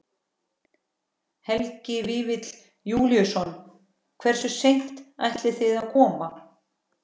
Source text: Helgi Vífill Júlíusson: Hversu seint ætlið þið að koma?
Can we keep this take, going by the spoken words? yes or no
yes